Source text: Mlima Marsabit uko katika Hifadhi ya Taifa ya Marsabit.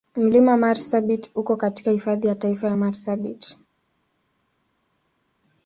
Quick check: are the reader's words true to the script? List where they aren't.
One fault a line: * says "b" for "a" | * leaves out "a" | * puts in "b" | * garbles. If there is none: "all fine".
all fine